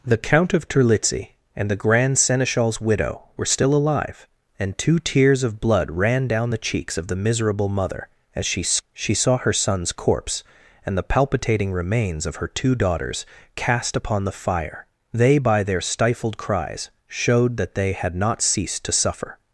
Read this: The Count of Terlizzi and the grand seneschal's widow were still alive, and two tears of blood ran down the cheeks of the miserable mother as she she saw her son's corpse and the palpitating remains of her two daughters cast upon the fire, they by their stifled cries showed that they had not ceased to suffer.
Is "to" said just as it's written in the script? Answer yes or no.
yes